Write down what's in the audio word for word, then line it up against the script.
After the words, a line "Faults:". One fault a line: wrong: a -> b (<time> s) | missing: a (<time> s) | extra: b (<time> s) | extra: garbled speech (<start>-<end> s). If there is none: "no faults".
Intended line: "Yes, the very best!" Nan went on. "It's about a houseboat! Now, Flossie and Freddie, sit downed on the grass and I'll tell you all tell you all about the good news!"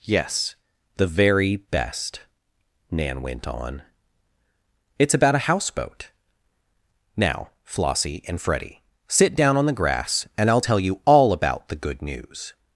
"Yes, the very best!" Nan went on. "It's about a houseboat! Now, Flossie and Freddie, sit down on the grass and I'll tell you all about the good news!"
Faults:
wrong: downed -> down (9.3 s)
missing: tell you all (11.3 s)